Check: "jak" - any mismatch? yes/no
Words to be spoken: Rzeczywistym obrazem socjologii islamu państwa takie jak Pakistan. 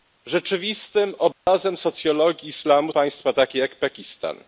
no